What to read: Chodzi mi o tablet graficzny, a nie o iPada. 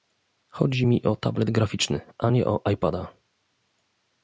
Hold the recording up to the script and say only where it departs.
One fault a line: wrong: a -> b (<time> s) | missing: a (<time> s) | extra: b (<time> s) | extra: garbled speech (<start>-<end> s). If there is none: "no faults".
no faults